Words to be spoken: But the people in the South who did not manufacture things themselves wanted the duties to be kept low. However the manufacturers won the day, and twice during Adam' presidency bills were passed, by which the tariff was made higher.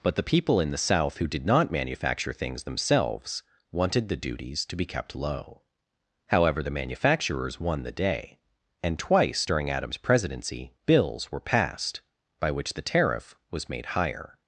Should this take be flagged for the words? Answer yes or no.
yes